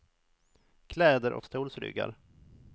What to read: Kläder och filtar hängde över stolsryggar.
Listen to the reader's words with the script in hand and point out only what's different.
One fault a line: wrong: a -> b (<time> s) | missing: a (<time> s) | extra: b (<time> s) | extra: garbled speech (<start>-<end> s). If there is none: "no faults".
missing: filtar hängde över (1.4 s)